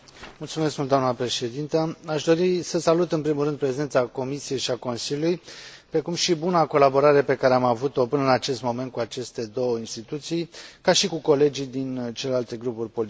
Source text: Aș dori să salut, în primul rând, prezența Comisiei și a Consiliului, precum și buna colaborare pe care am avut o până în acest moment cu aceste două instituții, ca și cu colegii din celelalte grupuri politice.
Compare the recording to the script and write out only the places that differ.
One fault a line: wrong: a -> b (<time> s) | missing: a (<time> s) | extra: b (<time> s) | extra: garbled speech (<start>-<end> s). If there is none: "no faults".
no faults